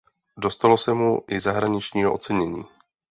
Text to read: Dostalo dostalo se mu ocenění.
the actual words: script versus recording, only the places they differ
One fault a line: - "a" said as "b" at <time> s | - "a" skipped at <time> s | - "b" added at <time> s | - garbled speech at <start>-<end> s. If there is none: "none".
- "dostalo" skipped at 0.8 s
- "i zahraničního" added at 1.3 s